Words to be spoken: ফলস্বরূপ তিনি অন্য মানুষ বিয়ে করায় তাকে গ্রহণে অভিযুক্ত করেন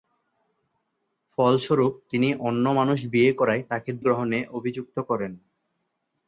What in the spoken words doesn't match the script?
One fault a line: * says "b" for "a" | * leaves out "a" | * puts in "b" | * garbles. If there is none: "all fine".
all fine